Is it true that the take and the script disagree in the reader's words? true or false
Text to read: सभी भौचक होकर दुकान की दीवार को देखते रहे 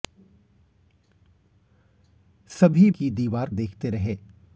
true